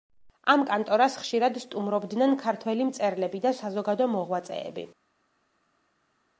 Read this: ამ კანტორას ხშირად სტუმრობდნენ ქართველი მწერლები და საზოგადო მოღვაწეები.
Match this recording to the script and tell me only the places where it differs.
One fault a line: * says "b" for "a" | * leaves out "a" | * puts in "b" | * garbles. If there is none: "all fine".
all fine